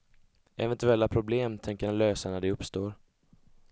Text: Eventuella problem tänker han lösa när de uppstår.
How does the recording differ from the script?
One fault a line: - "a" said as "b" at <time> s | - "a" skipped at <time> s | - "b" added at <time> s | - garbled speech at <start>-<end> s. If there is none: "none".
none